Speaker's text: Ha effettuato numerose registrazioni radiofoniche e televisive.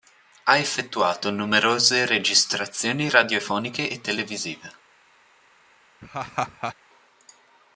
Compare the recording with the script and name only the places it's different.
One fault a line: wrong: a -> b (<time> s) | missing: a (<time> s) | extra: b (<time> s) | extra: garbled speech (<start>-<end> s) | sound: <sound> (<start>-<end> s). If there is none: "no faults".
sound: laugh (6.0-6.7 s)